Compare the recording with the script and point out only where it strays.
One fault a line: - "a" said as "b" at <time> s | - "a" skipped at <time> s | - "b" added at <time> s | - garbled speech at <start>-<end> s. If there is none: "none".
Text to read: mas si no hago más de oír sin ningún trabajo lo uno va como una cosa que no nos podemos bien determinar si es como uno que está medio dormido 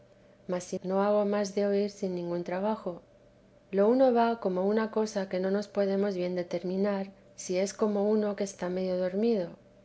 none